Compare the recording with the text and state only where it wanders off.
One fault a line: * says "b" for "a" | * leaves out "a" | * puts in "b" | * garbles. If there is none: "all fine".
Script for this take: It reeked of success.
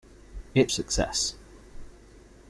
* leaves out "reeked of"